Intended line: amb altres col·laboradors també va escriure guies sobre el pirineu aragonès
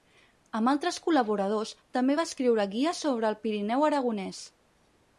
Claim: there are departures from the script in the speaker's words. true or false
false